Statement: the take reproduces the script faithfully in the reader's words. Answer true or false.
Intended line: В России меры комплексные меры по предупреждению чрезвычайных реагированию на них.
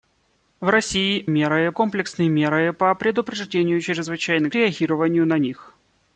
true